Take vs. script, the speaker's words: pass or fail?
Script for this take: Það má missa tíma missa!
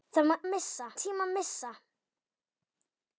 pass